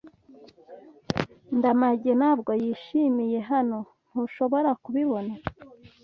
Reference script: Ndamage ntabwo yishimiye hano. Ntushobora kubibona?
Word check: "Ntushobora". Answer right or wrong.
right